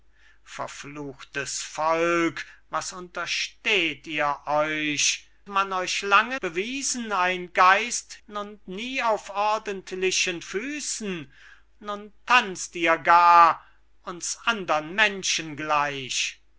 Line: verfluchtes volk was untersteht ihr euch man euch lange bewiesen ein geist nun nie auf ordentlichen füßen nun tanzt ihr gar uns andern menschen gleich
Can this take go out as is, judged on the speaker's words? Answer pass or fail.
pass